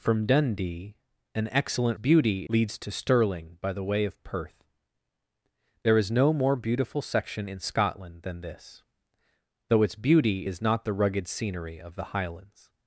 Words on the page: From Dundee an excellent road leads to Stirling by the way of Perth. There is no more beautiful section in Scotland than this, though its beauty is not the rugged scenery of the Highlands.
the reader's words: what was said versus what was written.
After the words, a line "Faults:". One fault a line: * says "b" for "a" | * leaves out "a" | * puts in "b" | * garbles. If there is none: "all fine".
From Dundee an excellent beauty leads to Stirling by the way of Perth. There is no more beautiful section in Scotland than this, though its beauty is not the rugged scenery of the Highlands.
Faults:
* says "beauty" for "road"